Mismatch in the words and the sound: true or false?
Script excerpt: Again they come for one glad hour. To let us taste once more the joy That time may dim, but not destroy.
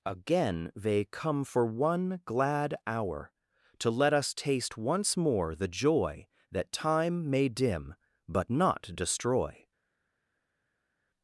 false